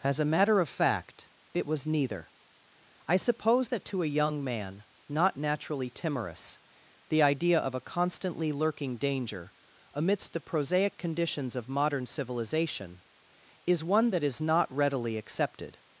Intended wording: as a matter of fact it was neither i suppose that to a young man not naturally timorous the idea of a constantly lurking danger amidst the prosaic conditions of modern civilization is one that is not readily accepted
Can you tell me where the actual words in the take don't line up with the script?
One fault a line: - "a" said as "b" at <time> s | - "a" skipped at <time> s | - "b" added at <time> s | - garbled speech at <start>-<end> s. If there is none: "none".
none